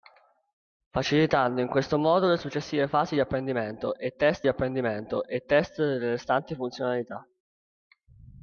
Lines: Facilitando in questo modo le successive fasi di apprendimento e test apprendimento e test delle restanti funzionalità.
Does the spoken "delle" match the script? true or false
true